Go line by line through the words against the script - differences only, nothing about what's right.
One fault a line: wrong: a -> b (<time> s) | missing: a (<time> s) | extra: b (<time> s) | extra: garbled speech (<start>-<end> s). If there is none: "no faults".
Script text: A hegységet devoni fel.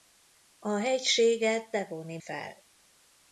no faults